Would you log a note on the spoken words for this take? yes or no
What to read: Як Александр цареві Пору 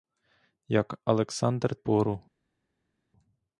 yes